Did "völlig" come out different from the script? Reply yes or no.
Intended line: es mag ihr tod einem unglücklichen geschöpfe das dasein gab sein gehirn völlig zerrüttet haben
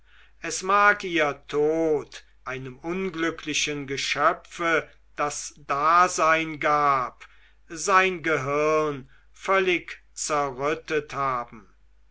no